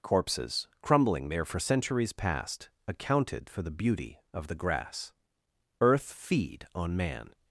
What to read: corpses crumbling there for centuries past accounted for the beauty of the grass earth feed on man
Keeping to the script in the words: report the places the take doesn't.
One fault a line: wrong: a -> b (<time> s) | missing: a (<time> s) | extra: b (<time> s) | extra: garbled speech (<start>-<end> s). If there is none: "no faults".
no faults